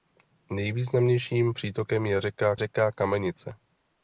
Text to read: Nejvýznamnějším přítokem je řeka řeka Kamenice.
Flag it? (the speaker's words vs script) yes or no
no